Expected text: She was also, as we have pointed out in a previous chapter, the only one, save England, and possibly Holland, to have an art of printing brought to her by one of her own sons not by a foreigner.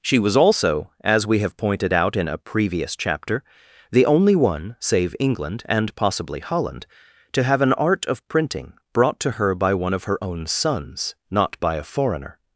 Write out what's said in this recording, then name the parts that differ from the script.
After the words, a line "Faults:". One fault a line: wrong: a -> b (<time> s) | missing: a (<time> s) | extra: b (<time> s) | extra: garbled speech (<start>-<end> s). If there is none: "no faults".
She was also, as we have pointed out in a previous chapter, the only one, save England, and possibly Holland, to have an art of printing brought to her by one of her own sons not by a foreigner.
Faults:
no faults